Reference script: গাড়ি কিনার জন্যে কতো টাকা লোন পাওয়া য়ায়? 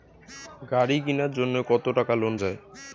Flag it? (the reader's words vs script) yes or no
yes